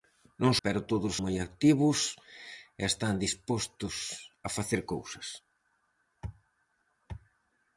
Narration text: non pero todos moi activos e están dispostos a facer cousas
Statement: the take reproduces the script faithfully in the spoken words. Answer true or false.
true